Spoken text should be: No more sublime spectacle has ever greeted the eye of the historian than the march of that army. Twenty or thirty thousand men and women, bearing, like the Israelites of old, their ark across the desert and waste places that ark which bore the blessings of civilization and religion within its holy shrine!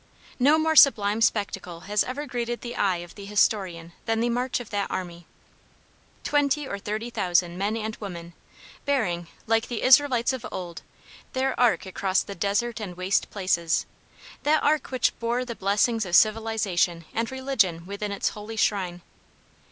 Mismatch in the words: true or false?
false